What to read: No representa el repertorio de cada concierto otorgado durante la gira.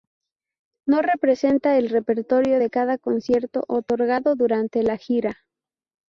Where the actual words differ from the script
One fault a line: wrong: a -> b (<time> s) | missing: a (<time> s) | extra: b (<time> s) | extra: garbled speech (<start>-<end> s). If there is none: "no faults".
no faults